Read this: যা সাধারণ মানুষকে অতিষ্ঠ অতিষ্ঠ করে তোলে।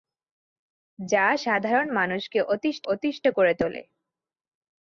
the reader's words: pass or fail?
pass